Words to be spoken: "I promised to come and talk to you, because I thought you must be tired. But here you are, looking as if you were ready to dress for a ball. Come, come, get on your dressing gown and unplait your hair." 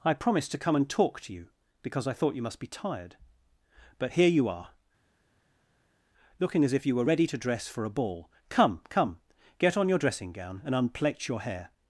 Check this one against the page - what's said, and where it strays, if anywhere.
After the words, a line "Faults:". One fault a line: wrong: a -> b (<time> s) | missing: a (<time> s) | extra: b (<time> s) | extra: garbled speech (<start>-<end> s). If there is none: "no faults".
"I promised to come and talk to you, because I thought you must be tired. But here you are, looking as if you were ready to dress for a ball. Come, come, get on your dressing gown and unplait your hair."
Faults:
no faults